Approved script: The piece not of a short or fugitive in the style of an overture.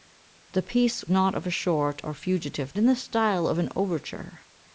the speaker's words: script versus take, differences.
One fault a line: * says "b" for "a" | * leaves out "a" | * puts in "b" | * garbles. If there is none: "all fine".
all fine